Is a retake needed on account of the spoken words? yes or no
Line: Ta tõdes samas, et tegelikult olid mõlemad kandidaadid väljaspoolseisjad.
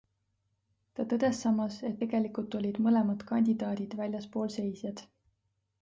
no